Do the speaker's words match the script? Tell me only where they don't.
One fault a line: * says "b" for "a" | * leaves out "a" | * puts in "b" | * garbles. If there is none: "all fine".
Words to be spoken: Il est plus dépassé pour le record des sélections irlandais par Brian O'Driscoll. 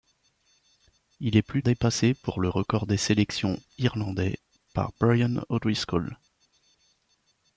all fine